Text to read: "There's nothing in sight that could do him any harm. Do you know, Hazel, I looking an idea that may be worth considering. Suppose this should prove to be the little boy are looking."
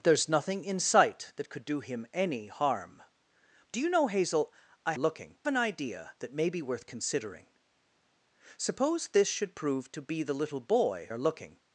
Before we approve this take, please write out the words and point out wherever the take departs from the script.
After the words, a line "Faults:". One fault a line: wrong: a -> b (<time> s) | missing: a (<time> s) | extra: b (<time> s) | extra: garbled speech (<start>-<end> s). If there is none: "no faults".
"There's nothing in sight that could do him any harm. Do you know, Hazel, I looking an idea that may be worth considering. Suppose this should prove to be the little boy are looking."
Faults:
no faults